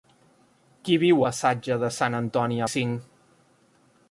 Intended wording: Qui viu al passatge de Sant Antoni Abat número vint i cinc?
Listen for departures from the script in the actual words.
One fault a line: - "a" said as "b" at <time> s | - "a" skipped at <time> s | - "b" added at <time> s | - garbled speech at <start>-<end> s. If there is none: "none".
- "al" skipped at 1.2 s
- "Abat número vint" skipped at 2.6 s